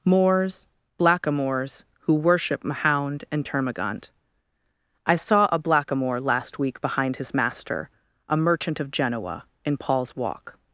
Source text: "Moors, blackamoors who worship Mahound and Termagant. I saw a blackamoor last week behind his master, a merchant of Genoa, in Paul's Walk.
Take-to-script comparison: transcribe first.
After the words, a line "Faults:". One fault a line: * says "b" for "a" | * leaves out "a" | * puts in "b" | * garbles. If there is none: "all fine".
"Moors, blackamoors who worship Mahound and Termagant. I saw a blackamoor last week behind his master, a merchant of Genoa, in Paul's Walk.
Faults:
all fine